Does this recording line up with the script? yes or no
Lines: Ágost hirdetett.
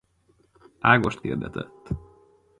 yes